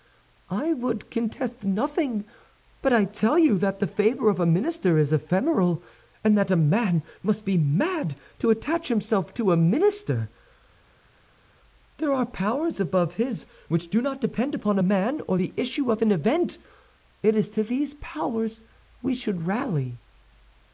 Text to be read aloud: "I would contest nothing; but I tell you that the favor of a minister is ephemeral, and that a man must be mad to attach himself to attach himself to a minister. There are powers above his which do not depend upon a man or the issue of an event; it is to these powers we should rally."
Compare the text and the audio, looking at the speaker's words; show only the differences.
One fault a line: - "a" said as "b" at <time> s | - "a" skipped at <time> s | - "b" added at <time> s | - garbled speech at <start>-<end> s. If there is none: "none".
- "attach himself to" skipped at 9.5 s